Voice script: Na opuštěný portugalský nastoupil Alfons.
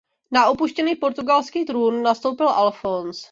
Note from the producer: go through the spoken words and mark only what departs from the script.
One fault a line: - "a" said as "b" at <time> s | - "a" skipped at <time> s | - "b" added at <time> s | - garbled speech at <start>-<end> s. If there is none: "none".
- "trůn" added at 1.6 s